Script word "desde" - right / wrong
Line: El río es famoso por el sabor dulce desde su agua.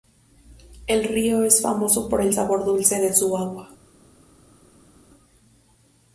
wrong